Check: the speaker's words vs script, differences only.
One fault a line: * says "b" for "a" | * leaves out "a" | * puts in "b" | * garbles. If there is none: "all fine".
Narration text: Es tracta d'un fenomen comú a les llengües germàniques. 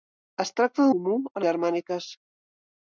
* leaves out "d'un fenomen"
* leaves out "les llengües"